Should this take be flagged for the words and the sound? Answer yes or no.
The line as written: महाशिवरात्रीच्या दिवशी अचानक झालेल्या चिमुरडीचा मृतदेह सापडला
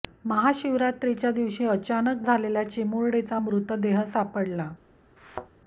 yes